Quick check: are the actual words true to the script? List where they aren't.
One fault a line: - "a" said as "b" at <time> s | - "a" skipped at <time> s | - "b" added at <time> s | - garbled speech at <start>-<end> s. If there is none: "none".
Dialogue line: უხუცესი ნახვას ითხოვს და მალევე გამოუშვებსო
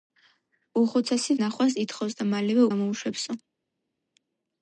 none